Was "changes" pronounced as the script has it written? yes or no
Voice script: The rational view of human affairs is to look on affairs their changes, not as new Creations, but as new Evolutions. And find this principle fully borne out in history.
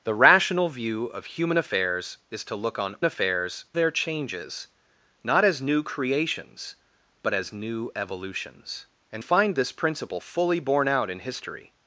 yes